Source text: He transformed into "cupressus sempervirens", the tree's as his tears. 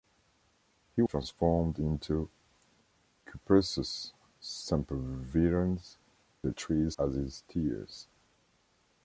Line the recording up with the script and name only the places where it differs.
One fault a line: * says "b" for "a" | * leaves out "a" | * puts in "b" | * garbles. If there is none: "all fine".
all fine